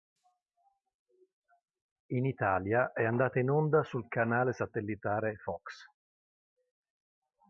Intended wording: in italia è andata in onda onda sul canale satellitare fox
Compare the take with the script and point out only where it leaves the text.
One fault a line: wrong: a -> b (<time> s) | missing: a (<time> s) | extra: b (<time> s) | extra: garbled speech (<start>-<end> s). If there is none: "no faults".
missing: onda (3.8 s)